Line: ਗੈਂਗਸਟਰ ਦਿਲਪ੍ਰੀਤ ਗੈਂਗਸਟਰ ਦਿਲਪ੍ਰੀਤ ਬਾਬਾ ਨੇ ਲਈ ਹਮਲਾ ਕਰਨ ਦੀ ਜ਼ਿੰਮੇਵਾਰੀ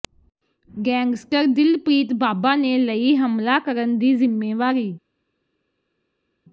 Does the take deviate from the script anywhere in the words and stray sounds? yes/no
yes